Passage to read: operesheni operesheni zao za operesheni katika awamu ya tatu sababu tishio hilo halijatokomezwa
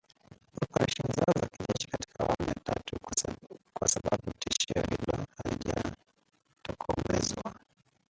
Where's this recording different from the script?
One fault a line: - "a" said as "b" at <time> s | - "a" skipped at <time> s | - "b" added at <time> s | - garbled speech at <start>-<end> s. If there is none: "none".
- "operesheni" skipped at 1.1 s
- "operesheni" said as "kijeshi" at 1.5 s
- "kwa" added at 3.7 s